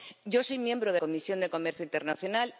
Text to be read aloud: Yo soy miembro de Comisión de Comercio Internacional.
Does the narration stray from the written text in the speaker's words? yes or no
no